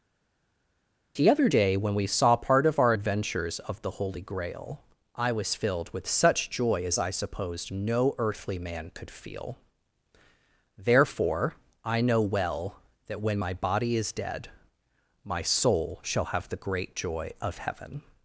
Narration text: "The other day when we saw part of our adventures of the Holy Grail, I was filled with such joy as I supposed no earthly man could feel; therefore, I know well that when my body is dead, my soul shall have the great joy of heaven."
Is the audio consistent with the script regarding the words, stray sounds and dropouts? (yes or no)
yes